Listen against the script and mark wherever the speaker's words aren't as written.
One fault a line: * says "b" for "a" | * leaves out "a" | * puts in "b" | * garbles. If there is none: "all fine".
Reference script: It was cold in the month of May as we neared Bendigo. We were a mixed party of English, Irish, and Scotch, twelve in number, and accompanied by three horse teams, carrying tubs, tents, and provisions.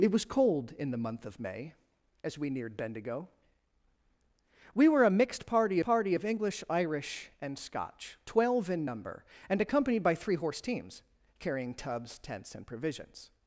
* puts in "party"